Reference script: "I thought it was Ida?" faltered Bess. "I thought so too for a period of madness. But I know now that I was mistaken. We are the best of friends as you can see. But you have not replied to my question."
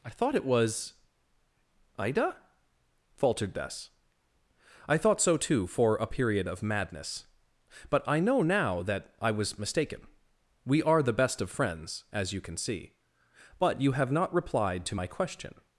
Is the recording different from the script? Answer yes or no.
no